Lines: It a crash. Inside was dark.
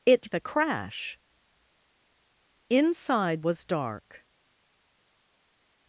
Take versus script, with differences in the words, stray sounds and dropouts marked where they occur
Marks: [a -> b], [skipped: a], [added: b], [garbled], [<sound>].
It a crash. Inside was dark.